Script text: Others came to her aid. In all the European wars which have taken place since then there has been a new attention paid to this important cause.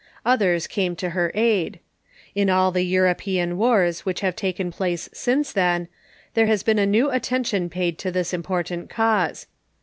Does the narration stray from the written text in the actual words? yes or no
no